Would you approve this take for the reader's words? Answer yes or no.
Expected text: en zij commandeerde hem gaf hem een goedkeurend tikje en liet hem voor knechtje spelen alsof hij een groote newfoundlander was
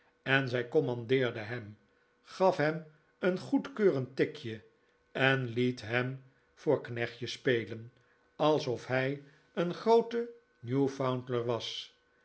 yes